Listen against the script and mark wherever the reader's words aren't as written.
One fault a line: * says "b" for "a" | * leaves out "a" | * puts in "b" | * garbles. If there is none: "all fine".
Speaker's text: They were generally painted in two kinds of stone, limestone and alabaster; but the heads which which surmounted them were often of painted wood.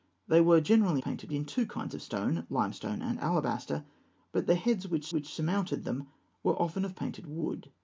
all fine